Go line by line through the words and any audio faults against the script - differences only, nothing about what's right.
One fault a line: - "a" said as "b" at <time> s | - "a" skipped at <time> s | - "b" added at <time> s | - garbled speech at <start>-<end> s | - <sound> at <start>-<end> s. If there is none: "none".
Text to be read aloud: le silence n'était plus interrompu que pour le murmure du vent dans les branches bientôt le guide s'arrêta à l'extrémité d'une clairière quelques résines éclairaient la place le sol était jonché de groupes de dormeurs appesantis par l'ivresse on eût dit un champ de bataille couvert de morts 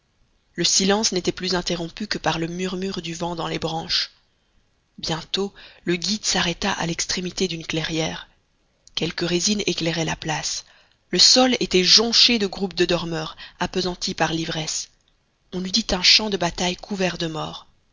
- "pour" said as "par" at 2.2 s